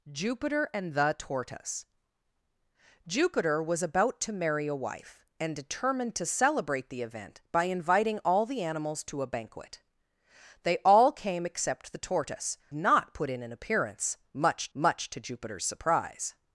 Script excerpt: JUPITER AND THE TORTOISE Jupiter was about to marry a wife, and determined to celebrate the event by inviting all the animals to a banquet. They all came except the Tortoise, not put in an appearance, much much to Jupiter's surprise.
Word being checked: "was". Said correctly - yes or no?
yes